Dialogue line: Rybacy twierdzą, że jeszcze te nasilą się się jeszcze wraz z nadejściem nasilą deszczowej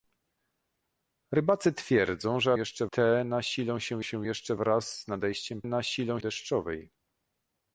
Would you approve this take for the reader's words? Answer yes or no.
yes